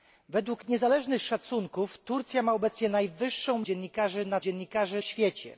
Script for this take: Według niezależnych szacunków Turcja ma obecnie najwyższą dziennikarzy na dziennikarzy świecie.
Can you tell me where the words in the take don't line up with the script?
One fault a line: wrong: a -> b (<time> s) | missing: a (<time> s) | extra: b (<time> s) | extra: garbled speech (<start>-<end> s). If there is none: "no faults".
no faults